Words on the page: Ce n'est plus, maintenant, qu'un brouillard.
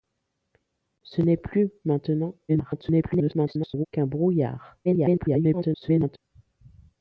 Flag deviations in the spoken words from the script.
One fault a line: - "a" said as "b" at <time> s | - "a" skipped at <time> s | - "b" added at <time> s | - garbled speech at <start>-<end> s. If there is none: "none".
- garbled speech at 2.5-3.9 s
- garbled speech at 4.8-6.2 s